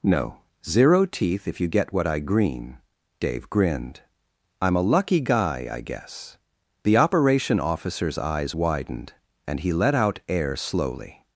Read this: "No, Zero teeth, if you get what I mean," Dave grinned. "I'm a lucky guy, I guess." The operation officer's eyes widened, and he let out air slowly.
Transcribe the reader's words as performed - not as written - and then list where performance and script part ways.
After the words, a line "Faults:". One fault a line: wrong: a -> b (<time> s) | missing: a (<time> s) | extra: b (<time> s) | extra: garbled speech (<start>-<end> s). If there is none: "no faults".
"No, Zero teeth, if you get what I green," Dave grinned. "I'm a lucky guy, I guess." The operation officer's eyes widened, and he let out air slowly.
Faults:
wrong: mean -> green (2.2 s)